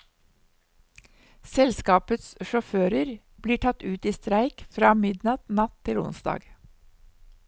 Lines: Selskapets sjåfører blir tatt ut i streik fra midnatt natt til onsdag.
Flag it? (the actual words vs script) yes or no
no